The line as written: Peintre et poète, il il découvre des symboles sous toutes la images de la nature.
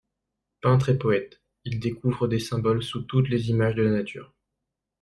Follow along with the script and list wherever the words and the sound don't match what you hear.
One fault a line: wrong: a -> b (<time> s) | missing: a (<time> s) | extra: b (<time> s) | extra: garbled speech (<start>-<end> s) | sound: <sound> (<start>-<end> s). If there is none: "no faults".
missing: il (1.8 s)
wrong: la -> les (3.3 s)